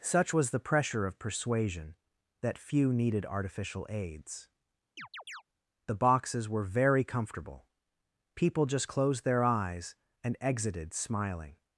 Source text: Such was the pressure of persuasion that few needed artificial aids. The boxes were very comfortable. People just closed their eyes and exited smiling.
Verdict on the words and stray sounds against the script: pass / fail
fail